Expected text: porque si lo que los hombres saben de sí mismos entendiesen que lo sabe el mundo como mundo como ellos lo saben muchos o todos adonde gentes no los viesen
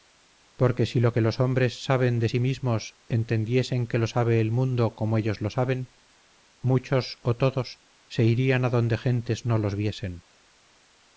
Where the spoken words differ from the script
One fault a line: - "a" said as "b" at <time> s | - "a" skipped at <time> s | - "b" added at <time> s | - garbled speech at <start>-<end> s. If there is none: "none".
- "mundo como" skipped at 5.2 s
- "se irían" added at 8.1 s